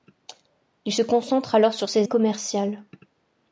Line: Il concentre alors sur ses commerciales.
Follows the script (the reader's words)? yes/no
yes